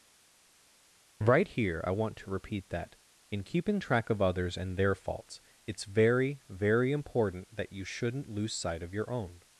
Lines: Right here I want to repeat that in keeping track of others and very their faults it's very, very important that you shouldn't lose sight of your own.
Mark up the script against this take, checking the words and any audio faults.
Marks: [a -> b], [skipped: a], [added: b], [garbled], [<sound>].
Right here I want to repeat that in keeping track of others and [skipped: very] their faults it's very, very important that you shouldn't lose sight of your own.